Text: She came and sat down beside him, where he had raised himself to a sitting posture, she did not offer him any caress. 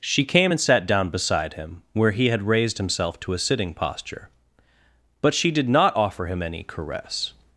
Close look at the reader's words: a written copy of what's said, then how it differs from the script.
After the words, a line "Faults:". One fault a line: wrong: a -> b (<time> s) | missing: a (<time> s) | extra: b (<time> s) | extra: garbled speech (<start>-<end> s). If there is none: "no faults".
She came and sat down beside him, where he had raised himself to a sitting posture, but she did not offer him any caress.
Faults:
extra: but (5.2 s)